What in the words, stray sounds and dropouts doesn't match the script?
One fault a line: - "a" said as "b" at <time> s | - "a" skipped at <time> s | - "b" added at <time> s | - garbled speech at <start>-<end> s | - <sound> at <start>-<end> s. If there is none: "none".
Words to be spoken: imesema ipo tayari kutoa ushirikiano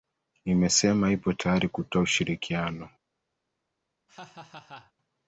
- laugh at 4.1-4.9 s